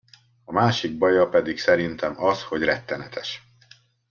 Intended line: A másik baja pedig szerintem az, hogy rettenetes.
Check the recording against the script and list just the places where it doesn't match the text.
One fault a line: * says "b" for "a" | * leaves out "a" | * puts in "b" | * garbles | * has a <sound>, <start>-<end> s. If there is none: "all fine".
all fine